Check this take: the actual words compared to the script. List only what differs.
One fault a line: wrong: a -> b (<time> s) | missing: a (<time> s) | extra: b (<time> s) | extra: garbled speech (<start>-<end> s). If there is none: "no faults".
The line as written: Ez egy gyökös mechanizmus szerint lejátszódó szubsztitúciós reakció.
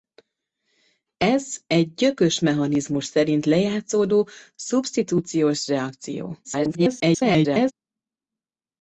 extra: garbled speech (6.4-7.7 s)